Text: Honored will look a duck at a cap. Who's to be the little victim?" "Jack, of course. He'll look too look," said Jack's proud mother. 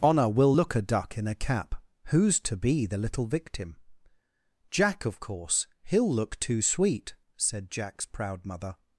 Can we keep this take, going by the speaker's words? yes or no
no